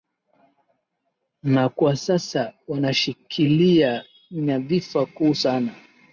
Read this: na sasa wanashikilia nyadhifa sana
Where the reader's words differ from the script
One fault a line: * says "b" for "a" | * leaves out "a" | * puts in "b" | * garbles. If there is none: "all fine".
* puts in "kwa"
* puts in "kuu"